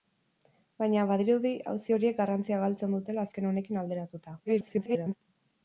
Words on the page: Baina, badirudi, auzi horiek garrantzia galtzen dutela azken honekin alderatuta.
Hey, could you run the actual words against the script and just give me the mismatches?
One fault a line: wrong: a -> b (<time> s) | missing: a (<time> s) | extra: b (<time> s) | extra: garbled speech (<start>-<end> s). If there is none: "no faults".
extra: garbled speech (4.4-5.2 s)